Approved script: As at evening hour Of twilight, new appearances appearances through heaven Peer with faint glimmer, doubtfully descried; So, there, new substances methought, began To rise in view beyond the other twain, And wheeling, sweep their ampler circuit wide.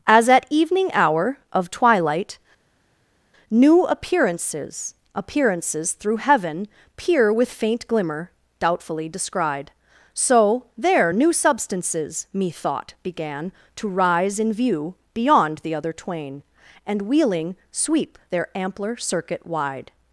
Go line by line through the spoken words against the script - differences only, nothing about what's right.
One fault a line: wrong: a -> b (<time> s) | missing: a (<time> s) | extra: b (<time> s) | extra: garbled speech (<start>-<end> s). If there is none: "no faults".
no faults